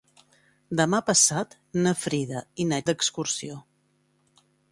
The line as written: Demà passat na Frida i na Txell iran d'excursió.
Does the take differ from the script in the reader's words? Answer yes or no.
yes